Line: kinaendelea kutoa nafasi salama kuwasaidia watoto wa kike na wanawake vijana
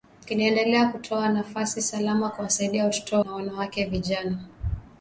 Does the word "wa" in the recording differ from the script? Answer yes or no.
yes